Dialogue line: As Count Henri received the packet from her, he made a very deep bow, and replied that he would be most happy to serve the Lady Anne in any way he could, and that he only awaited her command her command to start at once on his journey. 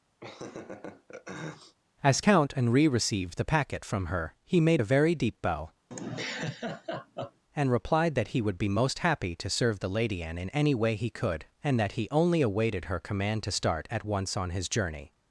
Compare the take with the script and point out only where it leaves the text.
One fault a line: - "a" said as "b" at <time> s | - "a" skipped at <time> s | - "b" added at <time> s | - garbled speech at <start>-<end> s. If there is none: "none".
- "her command" skipped at 13.4 s